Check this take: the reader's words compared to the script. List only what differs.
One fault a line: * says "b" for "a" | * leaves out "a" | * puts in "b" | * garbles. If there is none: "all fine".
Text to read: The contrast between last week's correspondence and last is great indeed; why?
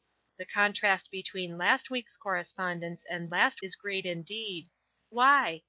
all fine